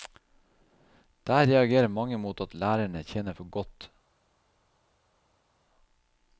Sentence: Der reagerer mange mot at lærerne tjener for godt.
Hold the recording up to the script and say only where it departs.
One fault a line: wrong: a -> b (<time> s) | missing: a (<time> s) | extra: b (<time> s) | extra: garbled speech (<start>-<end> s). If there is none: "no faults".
no faults